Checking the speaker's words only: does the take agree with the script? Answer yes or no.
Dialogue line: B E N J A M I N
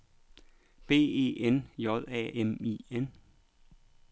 yes